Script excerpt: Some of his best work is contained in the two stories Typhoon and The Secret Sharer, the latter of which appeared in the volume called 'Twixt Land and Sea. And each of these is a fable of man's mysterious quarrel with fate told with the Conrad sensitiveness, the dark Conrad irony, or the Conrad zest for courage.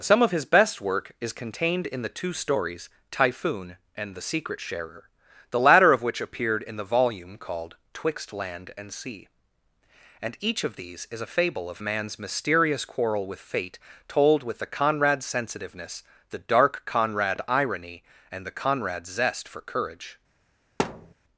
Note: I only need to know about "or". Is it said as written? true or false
false